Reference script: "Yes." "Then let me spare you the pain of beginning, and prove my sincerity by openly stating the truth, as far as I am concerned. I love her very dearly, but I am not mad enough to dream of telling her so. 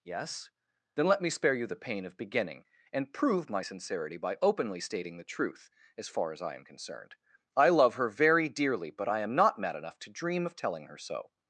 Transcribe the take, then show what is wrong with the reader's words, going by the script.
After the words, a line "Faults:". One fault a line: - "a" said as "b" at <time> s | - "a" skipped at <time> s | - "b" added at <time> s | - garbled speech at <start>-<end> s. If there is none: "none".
"Yes." "Then let me spare you the pain of beginning, and prove my sincerity by openly stating the truth, as far as I am concerned. I love her very dearly, but I am not mad enough to dream of telling her so.
Faults:
none